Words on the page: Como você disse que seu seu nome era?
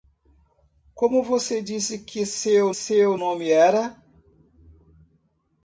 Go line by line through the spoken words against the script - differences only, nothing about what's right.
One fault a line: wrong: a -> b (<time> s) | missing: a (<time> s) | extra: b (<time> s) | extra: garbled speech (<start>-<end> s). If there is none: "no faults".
no faults